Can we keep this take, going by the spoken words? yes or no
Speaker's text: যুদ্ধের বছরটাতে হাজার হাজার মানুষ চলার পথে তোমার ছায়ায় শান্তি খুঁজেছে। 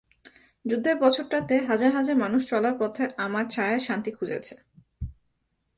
no